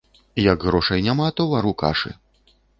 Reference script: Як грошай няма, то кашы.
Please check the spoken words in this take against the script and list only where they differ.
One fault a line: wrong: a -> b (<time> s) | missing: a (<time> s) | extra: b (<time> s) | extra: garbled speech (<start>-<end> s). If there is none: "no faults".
extra: вару (1.5 s)